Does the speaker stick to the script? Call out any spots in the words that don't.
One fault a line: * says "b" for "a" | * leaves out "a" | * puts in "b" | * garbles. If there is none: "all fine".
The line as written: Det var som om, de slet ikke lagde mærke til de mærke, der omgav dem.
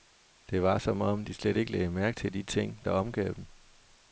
* says "ting" for "mærke"